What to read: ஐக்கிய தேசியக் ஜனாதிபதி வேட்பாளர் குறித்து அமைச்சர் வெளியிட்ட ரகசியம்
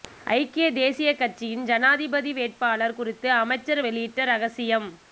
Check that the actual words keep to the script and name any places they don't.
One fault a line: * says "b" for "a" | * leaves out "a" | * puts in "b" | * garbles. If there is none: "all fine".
* puts in "கட்சியின்"